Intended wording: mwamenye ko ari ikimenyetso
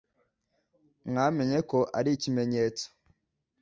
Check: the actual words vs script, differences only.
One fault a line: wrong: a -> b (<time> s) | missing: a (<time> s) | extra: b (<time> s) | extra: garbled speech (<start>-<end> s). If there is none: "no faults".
no faults